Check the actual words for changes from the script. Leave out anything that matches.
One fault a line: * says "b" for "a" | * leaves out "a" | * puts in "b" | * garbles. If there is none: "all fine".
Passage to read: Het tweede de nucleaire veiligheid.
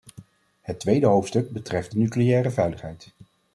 * puts in "hoofdstuk betreft"